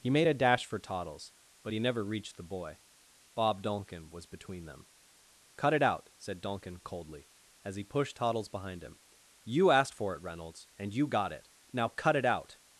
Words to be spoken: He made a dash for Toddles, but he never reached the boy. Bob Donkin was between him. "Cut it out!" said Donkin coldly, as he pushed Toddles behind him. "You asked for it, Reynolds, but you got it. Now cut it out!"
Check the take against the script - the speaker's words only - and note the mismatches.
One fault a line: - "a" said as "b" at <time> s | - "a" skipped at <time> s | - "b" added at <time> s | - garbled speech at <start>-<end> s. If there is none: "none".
- "him" said as "them" at 4.6 s
- "but" said as "and" at 10.8 s